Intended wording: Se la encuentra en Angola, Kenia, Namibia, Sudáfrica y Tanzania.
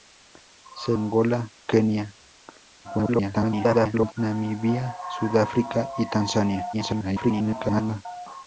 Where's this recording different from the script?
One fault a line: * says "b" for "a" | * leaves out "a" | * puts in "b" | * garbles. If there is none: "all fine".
* leaves out "la encuentra en"
* garbles
* garbles